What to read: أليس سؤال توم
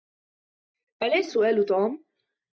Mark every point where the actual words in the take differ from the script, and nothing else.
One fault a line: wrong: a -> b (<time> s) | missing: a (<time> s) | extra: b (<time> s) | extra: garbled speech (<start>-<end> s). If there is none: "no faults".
no faults